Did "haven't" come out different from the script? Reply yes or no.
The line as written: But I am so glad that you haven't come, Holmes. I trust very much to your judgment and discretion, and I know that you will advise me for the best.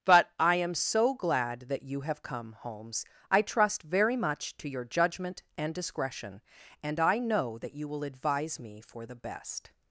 yes